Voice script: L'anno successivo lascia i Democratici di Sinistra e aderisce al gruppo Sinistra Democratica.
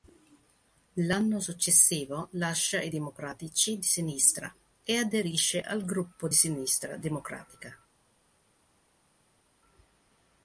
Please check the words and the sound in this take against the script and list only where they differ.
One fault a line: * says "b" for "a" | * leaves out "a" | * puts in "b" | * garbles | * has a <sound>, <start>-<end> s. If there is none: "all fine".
all fine